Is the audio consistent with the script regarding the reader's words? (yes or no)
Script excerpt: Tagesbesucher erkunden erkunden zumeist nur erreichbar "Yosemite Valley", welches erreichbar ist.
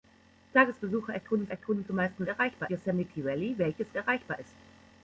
yes